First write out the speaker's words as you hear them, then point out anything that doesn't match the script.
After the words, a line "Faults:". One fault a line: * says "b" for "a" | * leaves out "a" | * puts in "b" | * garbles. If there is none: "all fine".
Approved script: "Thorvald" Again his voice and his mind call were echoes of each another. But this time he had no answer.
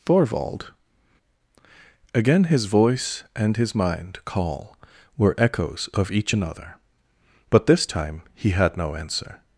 "Thorvald" Again his voice and his mind call were echoes of each another. But this time he had no answer.
Faults:
all fine